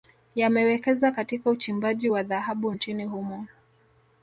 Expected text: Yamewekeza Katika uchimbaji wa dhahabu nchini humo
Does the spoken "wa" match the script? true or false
true